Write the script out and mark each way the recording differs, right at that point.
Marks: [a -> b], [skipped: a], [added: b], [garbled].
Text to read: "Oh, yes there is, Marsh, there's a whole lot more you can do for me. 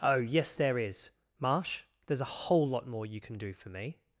"Oh, yes there is, Marsh, there's a whole lot more you can do for me.